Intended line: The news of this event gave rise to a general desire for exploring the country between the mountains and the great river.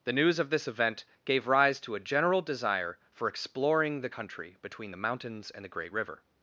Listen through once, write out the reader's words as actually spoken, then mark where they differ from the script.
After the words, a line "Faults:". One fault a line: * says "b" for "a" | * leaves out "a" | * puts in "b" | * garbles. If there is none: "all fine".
The news of this event gave rise to a general desire for exploring the country between the mountains and the great river.
Faults:
all fine